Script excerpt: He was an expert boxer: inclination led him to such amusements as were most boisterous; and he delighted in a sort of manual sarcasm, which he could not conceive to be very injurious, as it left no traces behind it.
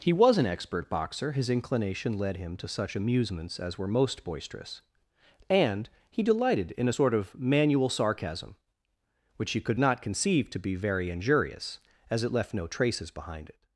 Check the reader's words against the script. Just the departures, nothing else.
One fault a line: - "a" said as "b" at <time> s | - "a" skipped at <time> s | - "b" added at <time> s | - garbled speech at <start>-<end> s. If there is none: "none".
- "his" added at 1.3 s